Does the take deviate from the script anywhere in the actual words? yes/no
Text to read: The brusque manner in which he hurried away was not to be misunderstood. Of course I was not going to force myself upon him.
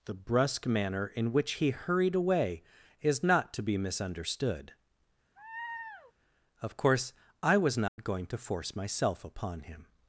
yes